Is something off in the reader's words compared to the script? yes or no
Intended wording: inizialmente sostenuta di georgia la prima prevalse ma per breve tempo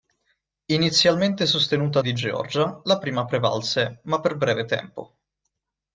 no